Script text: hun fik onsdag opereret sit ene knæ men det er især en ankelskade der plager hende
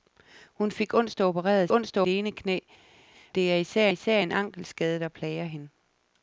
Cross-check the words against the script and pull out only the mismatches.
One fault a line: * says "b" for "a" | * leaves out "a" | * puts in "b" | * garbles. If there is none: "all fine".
* says "onsdag" for "sit"
* leaves out "men"
* puts in "især"